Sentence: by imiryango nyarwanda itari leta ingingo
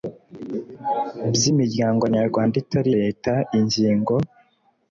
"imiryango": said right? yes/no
yes